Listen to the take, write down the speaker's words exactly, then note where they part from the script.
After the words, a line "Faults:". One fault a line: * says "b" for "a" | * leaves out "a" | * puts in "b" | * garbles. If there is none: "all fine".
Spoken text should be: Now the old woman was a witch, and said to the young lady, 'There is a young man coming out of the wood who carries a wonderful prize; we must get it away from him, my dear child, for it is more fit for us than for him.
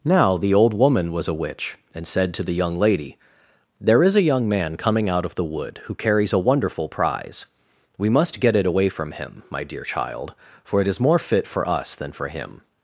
Now the old woman was a witch, and said to the young lady, 'There is a young man coming out of the wood who carries a wonderful prize; we must get it away from him, my dear child, for it is more fit for us than for him.
Faults:
all fine